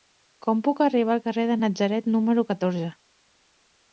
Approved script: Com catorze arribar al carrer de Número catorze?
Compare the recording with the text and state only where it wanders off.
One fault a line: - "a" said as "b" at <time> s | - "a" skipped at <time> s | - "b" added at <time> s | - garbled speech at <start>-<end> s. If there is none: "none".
- "catorze" said as "puc" at 0.7 s
- "Natzaret" added at 1.6 s